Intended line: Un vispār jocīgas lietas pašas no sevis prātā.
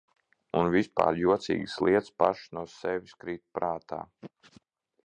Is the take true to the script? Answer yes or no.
no